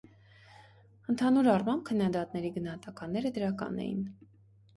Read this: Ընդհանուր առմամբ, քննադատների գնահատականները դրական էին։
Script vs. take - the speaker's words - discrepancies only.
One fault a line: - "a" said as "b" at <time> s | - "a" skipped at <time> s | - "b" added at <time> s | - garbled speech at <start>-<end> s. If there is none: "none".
none